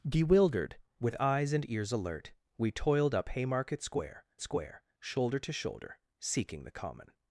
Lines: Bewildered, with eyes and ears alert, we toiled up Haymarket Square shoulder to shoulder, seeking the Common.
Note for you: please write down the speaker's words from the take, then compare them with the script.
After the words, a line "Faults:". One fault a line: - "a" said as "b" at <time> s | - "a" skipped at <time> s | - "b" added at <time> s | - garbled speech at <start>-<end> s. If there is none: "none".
Bewildered, with eyes and ears alert, we toiled up Haymarket Square Square shoulder to shoulder, seeking the Common.
Faults:
- "Square" added at 4.4 s